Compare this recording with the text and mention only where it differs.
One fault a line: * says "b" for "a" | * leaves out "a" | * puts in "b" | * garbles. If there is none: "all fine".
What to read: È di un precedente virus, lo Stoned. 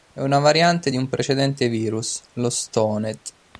* puts in "una variante"